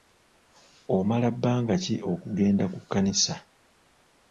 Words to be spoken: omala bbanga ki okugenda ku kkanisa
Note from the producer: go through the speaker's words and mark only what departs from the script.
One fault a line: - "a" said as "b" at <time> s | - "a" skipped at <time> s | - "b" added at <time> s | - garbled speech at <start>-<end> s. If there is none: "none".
none